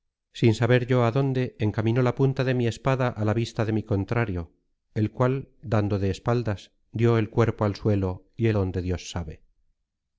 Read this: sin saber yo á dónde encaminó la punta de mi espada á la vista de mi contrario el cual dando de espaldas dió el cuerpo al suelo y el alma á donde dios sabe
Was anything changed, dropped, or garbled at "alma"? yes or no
yes